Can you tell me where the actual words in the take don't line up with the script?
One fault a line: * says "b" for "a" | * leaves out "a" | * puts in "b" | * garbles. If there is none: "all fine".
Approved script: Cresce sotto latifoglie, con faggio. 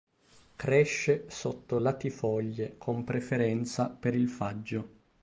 * puts in "preferenza per il"